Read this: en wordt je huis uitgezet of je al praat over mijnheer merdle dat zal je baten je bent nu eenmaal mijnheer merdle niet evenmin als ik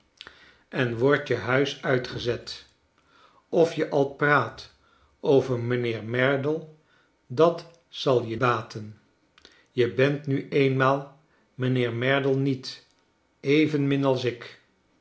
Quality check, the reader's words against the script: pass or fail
pass